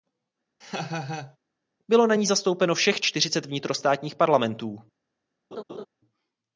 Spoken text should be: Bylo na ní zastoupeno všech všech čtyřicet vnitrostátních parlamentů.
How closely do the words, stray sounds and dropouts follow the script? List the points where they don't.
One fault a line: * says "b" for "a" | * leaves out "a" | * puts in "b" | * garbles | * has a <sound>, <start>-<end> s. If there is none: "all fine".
* has a laugh, 0.6-1.4 s
* leaves out "všech"
* has a laugh, 5.5-5.9 s